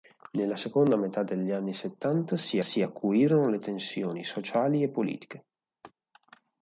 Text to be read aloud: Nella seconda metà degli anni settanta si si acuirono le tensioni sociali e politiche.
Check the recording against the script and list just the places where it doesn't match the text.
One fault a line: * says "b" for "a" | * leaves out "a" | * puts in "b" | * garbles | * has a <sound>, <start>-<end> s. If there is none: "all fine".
* has a laugh, 5.8-5.9 s